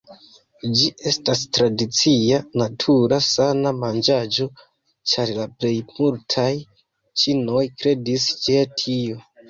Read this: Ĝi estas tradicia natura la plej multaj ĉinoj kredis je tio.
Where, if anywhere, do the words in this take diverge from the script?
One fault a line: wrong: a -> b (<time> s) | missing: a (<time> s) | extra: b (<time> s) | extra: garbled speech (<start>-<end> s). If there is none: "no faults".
extra: sana manĝaĵo ĉar (3.3 s)